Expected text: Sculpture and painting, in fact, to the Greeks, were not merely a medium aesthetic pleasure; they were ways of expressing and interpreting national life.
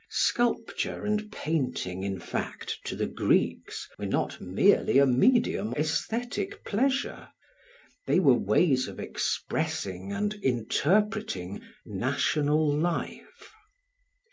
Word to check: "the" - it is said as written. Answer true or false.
true